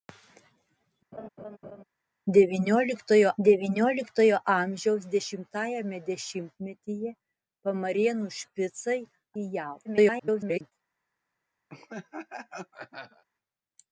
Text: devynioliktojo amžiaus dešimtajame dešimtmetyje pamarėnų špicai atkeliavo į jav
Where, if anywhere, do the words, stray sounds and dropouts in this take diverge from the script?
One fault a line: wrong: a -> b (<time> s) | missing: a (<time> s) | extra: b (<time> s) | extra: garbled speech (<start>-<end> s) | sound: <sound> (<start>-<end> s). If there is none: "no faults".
sound: laugh (1.1-1.8 s)
extra: devynioliktojo (3.5 s)
missing: atkeliavo (9.0 s)
extra: garbled speech (9.8-10.7 s)
sound: laugh (11.7-13.2 s)